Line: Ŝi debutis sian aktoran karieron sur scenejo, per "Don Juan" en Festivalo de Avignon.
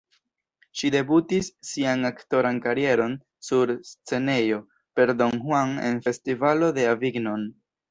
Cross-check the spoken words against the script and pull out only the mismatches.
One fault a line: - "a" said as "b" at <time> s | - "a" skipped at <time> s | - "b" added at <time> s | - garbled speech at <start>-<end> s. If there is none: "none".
none